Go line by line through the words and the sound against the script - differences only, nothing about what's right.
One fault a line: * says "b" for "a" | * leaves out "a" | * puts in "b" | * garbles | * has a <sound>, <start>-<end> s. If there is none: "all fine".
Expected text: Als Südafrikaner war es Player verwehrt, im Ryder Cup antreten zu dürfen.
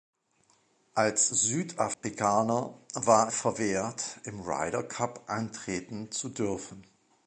* has a dropout, 1.9-2.0 s
* leaves out "es Player"